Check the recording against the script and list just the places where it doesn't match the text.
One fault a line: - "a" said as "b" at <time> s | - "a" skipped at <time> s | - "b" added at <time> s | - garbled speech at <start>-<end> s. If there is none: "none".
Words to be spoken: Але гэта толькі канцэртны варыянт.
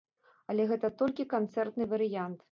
none